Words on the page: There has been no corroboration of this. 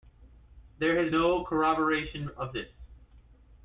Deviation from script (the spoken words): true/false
true